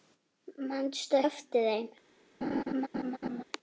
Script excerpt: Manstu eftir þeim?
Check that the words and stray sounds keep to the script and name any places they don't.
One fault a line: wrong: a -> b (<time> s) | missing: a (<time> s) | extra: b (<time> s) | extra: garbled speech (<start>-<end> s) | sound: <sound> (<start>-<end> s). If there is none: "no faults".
sound: laugh (2.4-3.4 s)